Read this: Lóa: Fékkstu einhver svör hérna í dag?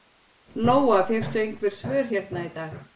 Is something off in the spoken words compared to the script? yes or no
no